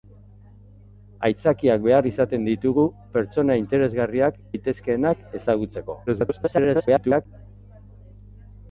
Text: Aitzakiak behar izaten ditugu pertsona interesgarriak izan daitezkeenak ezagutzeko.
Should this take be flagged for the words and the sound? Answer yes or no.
yes